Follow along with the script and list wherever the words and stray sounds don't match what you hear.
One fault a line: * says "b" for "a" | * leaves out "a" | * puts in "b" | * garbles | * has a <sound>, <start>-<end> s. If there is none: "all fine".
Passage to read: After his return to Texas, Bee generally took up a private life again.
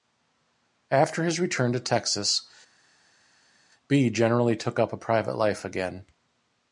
all fine